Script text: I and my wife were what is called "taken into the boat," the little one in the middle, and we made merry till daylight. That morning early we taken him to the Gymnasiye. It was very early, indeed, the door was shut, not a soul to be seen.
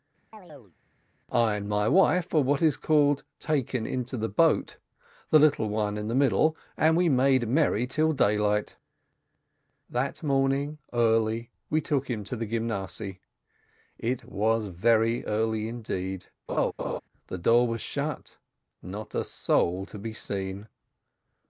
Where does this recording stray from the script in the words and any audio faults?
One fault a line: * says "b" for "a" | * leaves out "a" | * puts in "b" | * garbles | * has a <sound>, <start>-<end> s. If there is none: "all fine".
* has a chirp, 0.3-0.8 s
* says "took" for "taken"
* has a laugh, 16.5-17.0 s